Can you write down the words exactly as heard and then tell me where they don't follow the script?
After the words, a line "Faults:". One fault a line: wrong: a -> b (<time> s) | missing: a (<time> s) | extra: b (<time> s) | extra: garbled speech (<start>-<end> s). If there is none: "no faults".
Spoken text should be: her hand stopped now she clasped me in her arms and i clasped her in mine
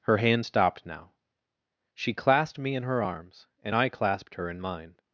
her hand stopped now she clasped me in her arms and i clasped her in mine
Faults:
no faults